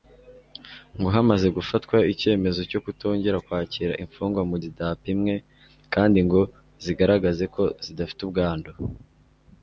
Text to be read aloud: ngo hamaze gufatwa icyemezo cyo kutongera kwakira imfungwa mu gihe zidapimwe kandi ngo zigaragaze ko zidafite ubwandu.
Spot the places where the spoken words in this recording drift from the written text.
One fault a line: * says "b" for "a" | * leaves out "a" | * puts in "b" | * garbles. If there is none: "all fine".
* leaves out "gihe"